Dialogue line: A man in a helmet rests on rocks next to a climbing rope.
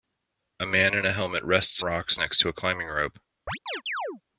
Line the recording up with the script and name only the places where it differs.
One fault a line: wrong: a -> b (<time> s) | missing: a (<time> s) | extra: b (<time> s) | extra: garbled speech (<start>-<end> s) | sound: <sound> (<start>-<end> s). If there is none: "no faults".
missing: on (1.8 s)
sound: chirp (3.5-4.2 s)